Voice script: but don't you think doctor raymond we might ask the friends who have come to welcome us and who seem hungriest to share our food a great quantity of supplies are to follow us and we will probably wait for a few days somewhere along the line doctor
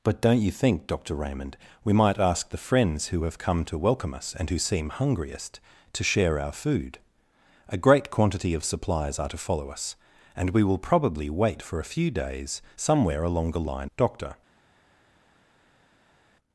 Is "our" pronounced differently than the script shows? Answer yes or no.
no